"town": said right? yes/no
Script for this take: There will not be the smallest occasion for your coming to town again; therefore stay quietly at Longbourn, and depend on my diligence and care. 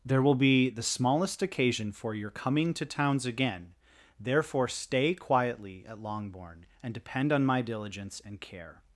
no